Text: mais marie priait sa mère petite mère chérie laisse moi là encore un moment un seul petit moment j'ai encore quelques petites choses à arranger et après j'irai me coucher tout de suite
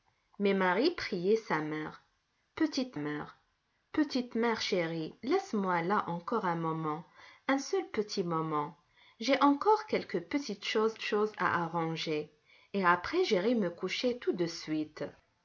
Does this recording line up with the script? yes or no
no